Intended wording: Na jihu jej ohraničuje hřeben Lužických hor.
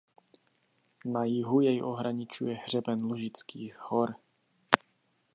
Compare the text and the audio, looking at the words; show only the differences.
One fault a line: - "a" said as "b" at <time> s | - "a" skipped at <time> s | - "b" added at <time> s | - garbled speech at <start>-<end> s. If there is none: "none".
none